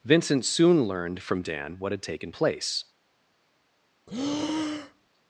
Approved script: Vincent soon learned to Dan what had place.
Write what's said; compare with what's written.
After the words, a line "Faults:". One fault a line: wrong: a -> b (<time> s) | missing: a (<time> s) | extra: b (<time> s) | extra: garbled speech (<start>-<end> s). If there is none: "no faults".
Vincent soon learned from Dan what had taken place.
Faults:
wrong: to -> from (1.2 s)
extra: taken (2.0 s)